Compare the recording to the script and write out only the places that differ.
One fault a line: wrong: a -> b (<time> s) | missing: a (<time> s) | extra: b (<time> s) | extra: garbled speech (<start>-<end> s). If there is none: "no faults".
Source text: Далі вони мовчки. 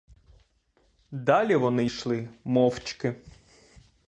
extra: йшли (1.8 s)